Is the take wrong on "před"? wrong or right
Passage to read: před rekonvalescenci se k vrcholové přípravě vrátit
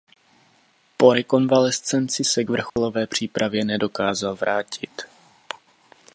wrong